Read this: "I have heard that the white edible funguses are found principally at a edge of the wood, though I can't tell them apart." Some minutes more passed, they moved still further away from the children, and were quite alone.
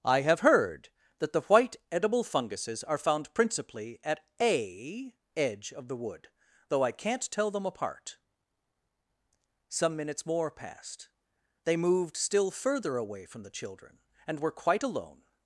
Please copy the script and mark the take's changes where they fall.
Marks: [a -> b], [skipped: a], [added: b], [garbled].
"I have heard that the white edible funguses are found principally at a edge of the wood, though I can't tell them apart." Some minutes more passed, they moved still further away from the children, and were quite alone.